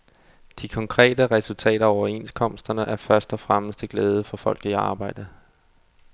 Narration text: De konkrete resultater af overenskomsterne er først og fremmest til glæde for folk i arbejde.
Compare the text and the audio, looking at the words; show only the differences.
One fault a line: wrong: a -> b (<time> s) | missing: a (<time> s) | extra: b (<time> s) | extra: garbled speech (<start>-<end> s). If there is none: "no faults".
no faults